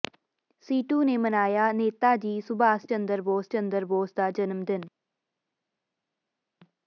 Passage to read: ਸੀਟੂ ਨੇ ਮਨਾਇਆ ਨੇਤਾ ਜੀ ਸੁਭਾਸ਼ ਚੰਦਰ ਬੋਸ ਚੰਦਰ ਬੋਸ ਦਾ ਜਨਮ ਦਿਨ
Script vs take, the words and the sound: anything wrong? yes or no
no